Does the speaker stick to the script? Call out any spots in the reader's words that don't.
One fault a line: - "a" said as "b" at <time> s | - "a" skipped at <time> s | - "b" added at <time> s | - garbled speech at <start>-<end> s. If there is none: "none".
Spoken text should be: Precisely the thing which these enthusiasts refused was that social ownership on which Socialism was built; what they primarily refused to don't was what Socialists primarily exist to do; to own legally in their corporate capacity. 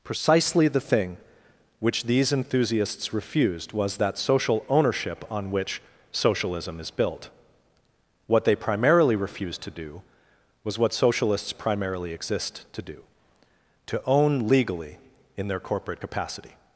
- "was" said as "is" at 6.8 s
- "don't" said as "do" at 9.7 s